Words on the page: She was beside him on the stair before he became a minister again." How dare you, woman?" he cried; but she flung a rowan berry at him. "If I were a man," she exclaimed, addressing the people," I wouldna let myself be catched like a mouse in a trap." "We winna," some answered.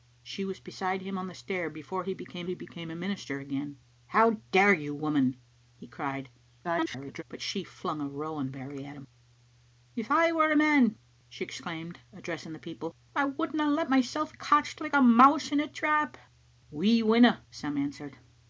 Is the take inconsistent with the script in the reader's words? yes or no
yes